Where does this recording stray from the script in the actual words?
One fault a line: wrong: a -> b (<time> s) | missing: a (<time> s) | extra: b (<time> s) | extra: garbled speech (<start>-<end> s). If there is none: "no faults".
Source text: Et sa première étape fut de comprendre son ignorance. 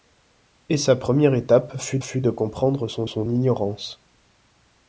extra: fut (2.0 s)
extra: son (3.0 s)